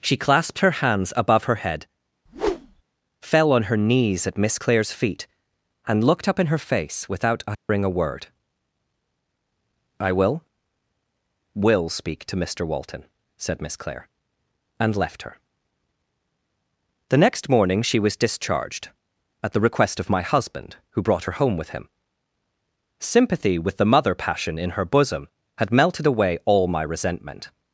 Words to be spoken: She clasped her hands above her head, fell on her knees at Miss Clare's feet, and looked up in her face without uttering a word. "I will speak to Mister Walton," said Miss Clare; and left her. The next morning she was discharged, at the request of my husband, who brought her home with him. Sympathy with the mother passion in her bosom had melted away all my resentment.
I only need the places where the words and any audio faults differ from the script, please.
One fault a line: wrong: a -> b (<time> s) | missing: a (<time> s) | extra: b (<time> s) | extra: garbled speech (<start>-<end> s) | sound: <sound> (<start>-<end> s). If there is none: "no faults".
sound: whoosh (2.3-2.8 s)
sound: dropout (7.5-7.7 s)
extra: will (11.5 s)